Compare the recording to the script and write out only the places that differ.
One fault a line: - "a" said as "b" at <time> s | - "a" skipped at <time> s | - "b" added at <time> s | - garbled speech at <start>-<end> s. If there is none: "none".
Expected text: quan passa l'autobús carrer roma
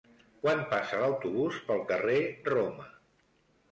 - "pel" added at 1.7 s